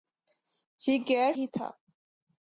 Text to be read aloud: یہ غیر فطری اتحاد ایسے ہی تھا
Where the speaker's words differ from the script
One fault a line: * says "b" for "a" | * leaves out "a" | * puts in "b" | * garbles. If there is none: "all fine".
* leaves out "فطری اتحاد ایسے"